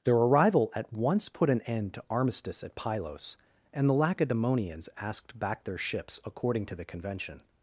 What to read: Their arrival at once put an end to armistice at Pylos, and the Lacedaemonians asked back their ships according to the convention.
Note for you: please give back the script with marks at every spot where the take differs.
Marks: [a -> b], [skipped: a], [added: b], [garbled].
Their arrival at once put an end to armistice at Pylos, and the Lacedaemonians asked back their ships according to the convention.